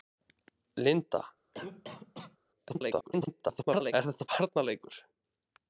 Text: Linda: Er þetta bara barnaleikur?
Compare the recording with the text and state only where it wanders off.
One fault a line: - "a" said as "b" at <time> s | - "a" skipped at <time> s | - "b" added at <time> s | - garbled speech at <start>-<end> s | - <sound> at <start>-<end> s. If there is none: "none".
- cough at 1.5-2.4 s
- garbled speech at 2.7-3.9 s
- "bara" skipped at 4.3 s